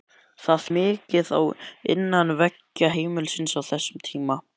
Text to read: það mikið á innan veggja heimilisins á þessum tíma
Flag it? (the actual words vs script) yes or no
no